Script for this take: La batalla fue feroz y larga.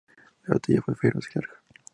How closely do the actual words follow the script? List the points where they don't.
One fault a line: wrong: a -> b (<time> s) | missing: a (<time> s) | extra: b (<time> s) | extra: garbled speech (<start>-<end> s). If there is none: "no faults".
no faults